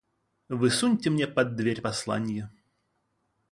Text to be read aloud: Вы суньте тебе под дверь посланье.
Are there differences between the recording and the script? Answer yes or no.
yes